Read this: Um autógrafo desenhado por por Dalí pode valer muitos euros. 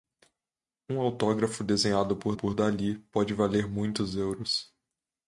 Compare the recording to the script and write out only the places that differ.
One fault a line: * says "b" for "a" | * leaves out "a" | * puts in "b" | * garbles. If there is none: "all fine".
all fine